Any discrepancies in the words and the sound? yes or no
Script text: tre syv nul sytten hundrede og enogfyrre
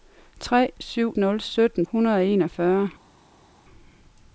no